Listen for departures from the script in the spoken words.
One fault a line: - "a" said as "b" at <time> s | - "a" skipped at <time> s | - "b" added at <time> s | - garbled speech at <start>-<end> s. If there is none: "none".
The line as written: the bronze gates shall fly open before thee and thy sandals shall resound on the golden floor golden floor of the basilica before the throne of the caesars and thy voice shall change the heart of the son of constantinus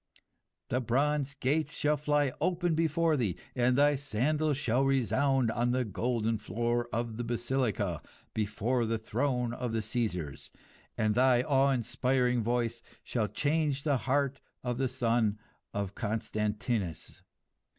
- "golden floor" skipped at 6.9 s
- "awe inspiring" added at 11.4 s